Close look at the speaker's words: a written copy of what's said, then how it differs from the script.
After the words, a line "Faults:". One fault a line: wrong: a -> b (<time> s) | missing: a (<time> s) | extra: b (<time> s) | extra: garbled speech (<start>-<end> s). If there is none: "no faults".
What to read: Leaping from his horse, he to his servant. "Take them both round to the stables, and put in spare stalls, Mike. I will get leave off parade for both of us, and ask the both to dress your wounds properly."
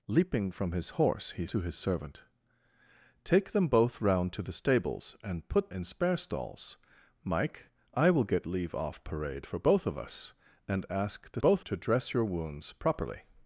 Leaping from his horse, he to his servant. "Take them both round to the stables, and put in spare stalls, Mike. I will get leave off parade for both of us, and ask the both to dress your wounds properly."
Faults:
no faults